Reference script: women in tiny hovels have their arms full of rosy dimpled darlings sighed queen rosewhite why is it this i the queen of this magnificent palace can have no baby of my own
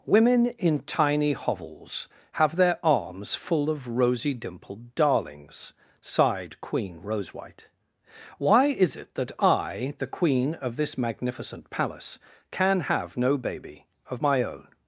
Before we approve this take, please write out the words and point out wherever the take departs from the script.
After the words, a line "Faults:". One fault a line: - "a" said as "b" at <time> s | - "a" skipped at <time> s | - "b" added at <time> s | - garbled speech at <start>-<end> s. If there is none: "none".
women in tiny hovels have their arms full of rosy dimpled darlings sighed queen rosewhite why is it that i the queen of this magnificent palace can have no baby of my own
Faults:
- "this" said as "that" at 9.1 s